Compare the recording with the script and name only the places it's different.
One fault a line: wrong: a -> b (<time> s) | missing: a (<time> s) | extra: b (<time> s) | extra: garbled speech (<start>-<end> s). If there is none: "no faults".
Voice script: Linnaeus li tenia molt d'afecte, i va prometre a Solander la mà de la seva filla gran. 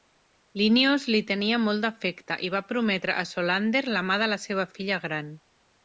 no faults